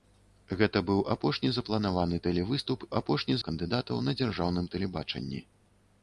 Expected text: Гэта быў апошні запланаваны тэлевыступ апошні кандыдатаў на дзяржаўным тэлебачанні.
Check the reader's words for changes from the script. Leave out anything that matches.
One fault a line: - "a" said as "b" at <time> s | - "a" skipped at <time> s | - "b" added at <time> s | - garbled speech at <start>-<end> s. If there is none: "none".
none